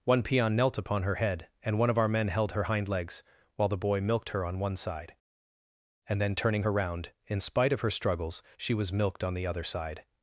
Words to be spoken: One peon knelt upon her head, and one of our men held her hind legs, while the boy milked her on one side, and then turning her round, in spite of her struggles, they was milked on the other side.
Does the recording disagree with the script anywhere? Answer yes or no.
yes